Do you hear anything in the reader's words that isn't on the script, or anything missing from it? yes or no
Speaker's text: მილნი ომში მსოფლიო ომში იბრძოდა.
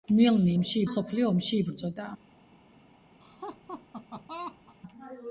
no